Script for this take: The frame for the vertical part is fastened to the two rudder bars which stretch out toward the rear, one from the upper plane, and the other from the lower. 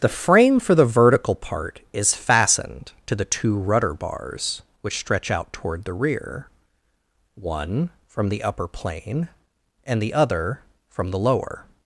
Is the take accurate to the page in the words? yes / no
yes